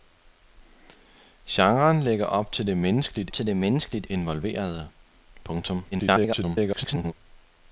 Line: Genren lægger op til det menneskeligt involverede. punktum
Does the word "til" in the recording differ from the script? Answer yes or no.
no